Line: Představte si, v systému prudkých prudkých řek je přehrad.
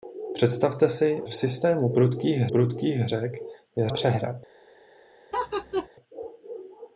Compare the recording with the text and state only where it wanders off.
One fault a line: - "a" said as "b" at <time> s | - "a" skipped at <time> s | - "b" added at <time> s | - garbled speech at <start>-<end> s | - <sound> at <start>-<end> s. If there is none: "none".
- laugh at 5.3-5.9 s